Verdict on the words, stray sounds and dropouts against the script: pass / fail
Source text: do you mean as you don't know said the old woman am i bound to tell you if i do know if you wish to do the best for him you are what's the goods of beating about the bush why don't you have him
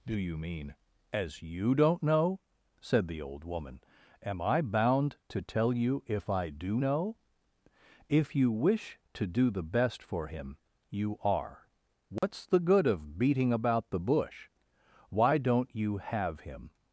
fail